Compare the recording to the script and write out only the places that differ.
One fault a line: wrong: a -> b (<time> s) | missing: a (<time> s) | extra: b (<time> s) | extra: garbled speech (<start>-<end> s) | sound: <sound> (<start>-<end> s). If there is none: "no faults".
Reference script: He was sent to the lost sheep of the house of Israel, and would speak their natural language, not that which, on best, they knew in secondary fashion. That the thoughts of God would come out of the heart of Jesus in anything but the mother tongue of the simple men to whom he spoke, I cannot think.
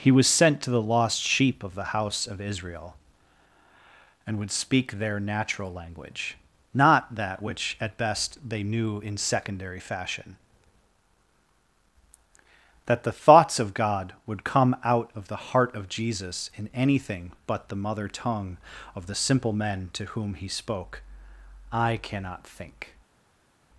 wrong: on -> at (7.8 s)